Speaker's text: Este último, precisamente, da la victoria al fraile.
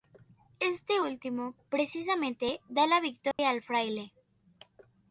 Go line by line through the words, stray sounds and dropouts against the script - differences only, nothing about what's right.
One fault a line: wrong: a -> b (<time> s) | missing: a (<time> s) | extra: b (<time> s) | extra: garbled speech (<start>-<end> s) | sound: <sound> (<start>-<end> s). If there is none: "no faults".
sound: dropout (3.3-3.4 s)